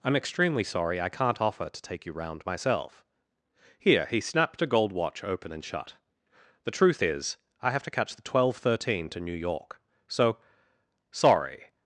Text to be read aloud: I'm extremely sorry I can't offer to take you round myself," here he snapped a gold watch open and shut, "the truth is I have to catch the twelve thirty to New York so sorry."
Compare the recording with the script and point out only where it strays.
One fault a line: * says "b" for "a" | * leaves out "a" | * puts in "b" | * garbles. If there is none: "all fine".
* says "thirteen" for "thirty"